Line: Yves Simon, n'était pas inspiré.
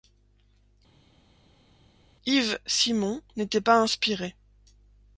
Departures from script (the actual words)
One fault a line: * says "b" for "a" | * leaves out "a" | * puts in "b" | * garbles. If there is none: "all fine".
all fine